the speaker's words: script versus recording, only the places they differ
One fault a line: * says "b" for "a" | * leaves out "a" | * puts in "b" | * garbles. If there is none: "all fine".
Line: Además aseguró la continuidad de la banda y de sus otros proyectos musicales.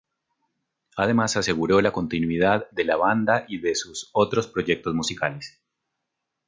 all fine